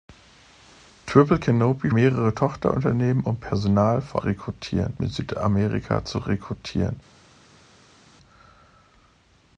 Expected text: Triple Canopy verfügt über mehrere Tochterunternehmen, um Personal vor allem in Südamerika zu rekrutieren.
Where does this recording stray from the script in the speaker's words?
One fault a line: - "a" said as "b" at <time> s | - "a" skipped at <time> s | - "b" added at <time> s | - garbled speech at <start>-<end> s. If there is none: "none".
- "verfügt über" skipped at 1.9 s
- "allem" said as "rekrutieren" at 4.2 s